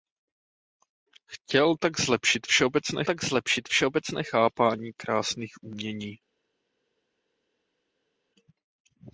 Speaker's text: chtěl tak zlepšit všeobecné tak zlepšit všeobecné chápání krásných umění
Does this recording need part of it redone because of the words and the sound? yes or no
no